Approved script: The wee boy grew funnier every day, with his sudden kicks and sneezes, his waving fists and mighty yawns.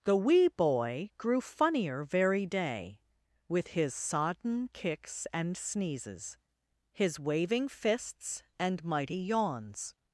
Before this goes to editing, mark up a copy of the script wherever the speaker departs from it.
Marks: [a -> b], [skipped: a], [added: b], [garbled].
The wee boy grew funnier [every -> very] day, with his [sudden -> sodden] kicks and sneezes, his waving fists and mighty yawns.